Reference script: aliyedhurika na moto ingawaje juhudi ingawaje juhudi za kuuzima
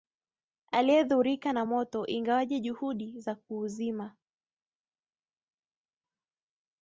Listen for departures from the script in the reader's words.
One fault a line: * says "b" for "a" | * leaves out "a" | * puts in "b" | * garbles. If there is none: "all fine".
* leaves out "ingawaje juhudi"